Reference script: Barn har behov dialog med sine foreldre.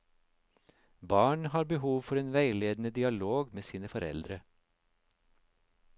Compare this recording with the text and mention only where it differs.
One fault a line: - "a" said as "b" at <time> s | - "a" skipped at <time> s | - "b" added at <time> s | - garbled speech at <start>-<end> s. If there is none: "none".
- "for en veiledende" added at 2.0 s